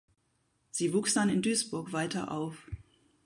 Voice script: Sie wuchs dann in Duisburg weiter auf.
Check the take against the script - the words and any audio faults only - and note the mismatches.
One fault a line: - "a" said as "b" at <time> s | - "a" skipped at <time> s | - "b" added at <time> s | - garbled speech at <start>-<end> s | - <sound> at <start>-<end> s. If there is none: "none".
none